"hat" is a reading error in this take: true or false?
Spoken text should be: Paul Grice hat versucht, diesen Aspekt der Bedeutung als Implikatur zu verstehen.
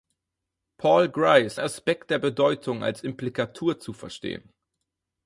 true